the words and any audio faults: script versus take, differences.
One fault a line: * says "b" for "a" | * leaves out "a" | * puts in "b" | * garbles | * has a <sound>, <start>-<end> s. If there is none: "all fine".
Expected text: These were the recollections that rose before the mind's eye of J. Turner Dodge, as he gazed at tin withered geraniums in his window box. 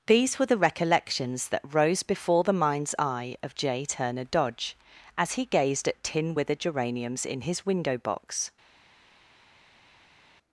all fine